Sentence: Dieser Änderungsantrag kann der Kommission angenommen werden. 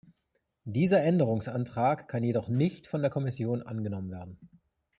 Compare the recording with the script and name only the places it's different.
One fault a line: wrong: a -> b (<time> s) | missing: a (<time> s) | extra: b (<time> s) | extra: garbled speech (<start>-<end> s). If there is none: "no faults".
extra: jedoch nicht von (2.2 s)